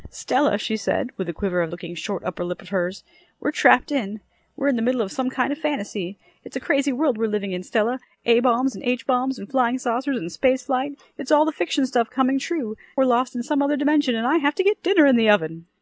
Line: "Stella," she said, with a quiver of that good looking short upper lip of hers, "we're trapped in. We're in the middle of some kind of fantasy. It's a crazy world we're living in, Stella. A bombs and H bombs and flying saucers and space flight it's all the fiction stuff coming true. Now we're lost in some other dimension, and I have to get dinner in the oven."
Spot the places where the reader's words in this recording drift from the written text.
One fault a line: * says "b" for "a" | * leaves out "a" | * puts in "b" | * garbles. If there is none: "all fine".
* leaves out "that good"
* leaves out "Now"